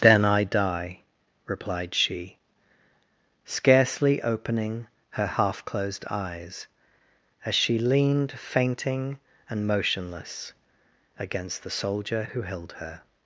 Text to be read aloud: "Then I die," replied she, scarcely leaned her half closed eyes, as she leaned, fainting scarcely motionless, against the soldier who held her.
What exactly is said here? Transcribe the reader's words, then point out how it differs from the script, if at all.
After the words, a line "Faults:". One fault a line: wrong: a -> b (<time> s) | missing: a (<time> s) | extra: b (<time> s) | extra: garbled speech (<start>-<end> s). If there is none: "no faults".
"Then I die," replied she, scarcely opening her half closed eyes, as she leaned, fainting and motionless, against the soldier who held her.
Faults:
wrong: leaned -> opening (4.2 s)
wrong: scarcely -> and (9.5 s)